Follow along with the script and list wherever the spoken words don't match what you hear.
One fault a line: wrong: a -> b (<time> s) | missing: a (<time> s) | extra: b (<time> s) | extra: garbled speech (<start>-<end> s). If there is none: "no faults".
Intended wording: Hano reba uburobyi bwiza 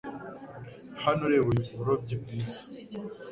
no faults